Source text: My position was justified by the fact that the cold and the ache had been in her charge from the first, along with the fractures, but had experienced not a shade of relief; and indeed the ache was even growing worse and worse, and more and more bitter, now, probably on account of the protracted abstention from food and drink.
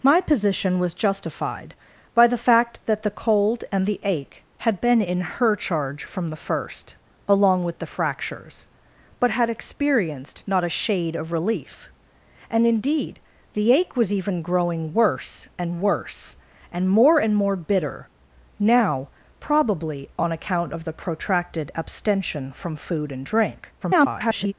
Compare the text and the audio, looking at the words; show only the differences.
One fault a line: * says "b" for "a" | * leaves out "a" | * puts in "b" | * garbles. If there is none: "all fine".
* garbles